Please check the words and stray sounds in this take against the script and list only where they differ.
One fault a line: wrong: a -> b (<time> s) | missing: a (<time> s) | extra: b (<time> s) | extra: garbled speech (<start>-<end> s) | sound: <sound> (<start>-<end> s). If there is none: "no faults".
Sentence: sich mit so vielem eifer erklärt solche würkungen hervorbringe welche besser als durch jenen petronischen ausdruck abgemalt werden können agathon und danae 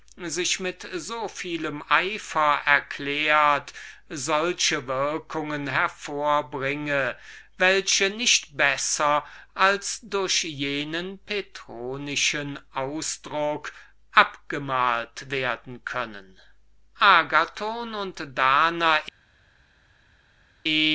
extra: nicht (8.1 s)